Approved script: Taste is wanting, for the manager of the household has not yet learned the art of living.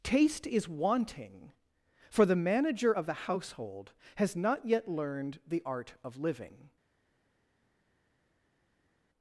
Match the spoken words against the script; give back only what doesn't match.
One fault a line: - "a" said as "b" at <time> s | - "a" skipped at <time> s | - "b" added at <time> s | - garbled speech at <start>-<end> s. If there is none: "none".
none